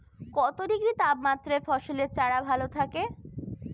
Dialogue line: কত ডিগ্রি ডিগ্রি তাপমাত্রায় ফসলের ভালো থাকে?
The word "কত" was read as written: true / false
true